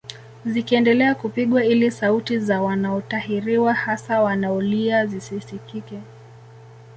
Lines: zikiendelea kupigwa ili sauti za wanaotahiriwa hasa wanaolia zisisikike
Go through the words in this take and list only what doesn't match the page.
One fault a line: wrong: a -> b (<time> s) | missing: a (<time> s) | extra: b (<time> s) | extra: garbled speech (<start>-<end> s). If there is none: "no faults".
no faults